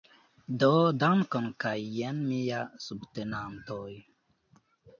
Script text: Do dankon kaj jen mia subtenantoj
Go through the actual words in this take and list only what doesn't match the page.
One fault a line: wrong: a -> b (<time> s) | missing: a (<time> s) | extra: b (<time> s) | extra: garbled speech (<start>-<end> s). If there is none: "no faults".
no faults